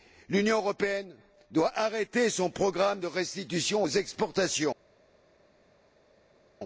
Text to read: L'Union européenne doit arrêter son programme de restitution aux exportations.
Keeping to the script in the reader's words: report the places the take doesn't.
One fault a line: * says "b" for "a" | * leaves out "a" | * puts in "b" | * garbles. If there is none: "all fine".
all fine